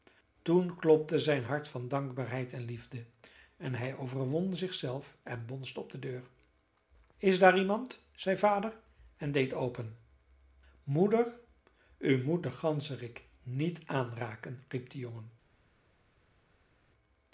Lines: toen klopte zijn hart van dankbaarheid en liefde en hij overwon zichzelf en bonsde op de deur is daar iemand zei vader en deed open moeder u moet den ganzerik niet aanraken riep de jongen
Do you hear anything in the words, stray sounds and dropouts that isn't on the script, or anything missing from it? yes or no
no